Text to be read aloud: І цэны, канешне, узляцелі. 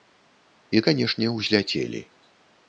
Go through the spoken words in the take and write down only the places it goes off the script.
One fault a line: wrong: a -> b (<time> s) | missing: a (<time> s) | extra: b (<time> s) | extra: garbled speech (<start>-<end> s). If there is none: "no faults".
missing: цэны (0.8 s)